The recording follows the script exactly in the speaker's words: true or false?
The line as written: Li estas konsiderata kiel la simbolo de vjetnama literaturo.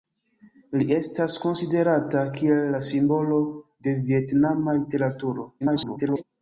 false